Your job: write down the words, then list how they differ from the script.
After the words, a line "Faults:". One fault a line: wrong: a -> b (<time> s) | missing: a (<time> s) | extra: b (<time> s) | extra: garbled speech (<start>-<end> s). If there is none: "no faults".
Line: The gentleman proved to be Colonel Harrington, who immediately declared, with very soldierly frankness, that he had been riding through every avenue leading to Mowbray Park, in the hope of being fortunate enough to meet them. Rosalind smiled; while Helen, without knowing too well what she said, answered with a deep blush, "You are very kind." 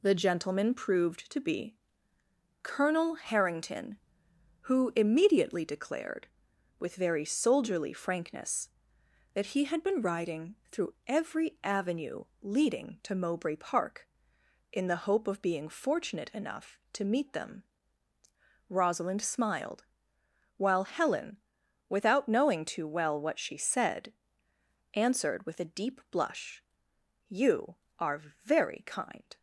The gentleman proved to be Colonel Harrington, who immediately declared, with very soldierly frankness, that he had been riding through every avenue leading to Mowbray Park, in the hope of being fortunate enough to meet them. Rosalind smiled; while Helen, without knowing too well what she said, answered with a deep blush, "You are very kind."
Faults:
no faults